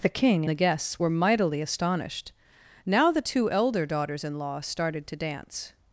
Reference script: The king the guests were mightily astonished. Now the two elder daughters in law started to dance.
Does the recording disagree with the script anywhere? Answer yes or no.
no